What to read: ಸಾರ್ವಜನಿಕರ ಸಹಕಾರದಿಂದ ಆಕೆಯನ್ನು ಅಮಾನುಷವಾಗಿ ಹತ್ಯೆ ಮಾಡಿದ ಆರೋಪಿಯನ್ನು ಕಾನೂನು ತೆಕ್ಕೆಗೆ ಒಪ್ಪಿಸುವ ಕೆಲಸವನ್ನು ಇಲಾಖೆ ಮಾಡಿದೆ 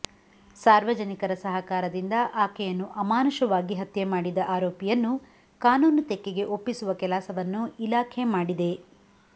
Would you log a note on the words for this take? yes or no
no